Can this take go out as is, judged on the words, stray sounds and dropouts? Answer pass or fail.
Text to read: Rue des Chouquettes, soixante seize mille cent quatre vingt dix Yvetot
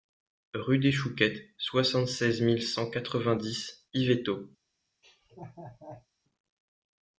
fail